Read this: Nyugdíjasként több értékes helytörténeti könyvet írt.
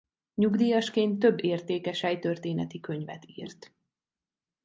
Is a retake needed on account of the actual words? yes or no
no